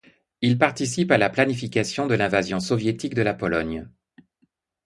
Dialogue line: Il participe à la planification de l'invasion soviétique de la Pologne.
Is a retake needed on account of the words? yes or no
no